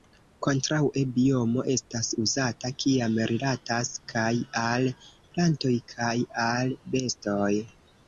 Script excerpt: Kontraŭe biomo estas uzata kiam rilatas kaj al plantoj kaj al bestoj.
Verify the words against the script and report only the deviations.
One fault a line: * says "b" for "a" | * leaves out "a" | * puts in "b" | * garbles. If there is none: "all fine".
all fine